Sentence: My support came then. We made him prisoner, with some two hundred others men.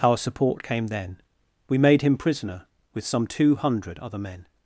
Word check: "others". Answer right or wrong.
wrong